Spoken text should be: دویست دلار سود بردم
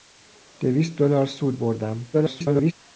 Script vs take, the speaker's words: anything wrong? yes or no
yes